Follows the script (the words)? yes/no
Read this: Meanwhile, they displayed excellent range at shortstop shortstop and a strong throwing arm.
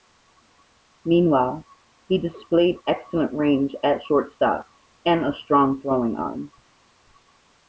no